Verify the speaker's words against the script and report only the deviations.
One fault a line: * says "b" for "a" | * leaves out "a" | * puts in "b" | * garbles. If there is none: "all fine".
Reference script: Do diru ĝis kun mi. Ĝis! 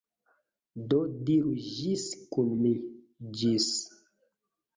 all fine